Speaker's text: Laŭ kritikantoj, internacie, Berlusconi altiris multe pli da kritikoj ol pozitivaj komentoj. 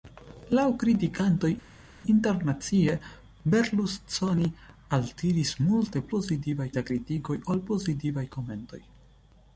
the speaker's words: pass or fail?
fail